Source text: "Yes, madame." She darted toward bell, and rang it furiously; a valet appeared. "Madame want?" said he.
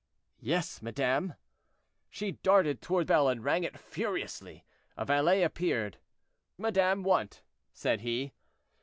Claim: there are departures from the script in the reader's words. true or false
false